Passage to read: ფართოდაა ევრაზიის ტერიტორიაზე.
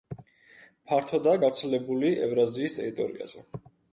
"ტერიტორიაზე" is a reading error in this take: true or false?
false